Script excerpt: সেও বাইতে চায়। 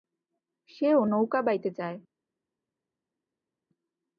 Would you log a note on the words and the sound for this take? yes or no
yes